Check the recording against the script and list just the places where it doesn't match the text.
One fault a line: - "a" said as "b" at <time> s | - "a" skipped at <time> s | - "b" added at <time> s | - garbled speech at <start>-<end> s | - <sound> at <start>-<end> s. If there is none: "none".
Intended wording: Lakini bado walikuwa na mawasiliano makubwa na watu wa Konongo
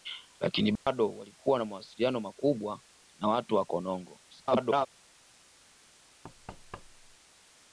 - dropout at 0.8-0.9 s
- garbled speech at 4.3-4.9 s
- thud at 6.2-7.2 s